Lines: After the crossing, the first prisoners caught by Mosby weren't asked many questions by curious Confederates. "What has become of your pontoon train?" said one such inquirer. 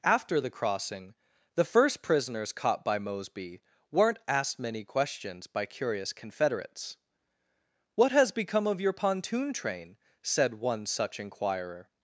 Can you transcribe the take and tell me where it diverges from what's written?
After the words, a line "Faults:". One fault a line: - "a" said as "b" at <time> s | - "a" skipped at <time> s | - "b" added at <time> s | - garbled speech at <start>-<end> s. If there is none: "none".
After the crossing, the first prisoners caught by Mosby weren't asked many questions by curious Confederates. "What has become of your pontoon train?" said one such inquirer.
Faults:
none